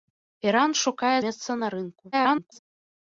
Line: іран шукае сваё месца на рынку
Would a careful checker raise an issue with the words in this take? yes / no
yes